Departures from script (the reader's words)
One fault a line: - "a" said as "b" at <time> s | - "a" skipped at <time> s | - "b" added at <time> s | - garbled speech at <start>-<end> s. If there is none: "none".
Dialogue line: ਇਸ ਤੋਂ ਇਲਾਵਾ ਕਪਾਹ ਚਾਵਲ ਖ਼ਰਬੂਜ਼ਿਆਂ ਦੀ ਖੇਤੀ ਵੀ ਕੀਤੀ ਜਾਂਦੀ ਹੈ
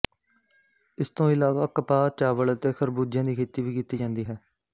- "ਅਤੇ" added at 2.5 s